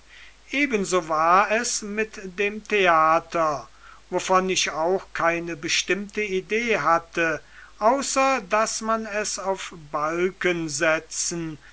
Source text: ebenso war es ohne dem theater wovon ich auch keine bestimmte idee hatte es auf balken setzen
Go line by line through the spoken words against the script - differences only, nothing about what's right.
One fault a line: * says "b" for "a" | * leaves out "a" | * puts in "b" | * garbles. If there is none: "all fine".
* says "mit" for "ohne"
* puts in "außer daß man"